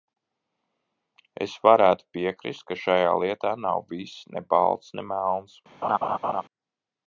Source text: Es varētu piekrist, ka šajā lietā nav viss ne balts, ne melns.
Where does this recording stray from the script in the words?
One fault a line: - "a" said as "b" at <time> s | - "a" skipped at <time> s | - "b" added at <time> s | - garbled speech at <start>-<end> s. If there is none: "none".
none